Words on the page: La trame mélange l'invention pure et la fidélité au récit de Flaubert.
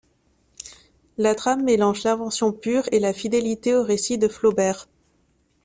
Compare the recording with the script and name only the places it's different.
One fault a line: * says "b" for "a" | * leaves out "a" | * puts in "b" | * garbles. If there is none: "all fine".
all fine